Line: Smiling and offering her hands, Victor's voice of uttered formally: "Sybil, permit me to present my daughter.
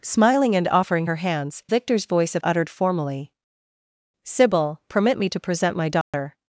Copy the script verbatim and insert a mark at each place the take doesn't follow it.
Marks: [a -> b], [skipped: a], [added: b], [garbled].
Smiling and offering her hands, Victor's voice of uttered formally: "Sybil, permit me to present my daughter.